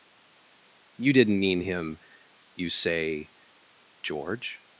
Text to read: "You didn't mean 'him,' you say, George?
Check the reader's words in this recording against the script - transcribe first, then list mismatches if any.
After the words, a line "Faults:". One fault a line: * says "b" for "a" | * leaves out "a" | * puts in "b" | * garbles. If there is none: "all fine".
"You didn't mean 'him,' you say, George?
Faults:
all fine